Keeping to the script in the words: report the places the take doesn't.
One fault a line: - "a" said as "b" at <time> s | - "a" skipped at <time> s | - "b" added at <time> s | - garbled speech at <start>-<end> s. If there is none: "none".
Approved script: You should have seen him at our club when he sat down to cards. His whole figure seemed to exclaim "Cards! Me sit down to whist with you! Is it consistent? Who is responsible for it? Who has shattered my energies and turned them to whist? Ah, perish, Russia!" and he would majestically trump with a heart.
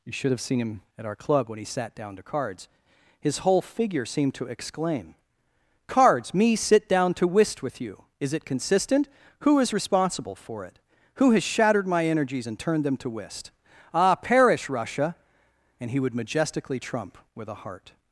none